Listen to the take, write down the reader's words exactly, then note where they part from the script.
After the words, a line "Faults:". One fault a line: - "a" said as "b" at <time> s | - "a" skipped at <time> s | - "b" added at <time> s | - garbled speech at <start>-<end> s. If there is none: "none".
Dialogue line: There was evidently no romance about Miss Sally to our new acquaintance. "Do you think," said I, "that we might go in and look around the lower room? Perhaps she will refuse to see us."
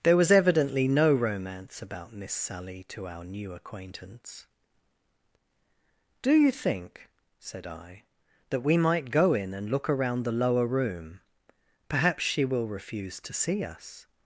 There was evidently no romance about Miss Sally to our new acquaintance. "Do you think," said I, "that we might go in and look around the lower room? Perhaps she will refuse to see us."
Faults:
none